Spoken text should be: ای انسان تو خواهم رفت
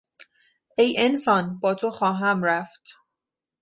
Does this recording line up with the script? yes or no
no